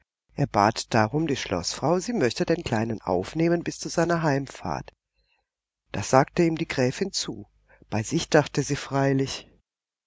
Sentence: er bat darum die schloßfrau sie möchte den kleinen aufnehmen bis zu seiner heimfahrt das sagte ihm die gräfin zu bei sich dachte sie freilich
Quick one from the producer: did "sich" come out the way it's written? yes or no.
yes